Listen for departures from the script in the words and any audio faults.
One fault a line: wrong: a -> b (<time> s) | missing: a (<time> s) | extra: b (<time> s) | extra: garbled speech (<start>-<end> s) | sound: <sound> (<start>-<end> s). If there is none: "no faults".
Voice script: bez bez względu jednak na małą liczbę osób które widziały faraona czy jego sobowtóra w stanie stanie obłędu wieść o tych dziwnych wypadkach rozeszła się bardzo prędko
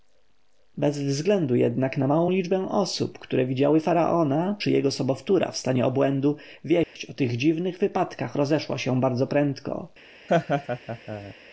missing: bez (1.0 s)
missing: stanie (5.8 s)
sound: dropout (6.8-7.0 s)
sound: laugh (10.3-11.3 s)